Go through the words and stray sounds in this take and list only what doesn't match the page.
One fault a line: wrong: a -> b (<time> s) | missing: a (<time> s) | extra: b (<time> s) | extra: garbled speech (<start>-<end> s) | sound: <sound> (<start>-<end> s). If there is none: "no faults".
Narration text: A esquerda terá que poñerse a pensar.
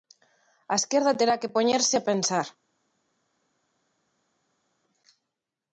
no faults